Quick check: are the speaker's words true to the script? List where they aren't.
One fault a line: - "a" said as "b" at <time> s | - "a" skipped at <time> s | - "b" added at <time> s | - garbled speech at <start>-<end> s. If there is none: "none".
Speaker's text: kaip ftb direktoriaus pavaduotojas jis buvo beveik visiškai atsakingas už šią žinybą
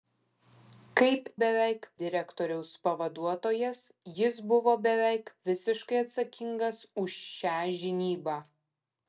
- "ftb" said as "beveik" at 1.4 s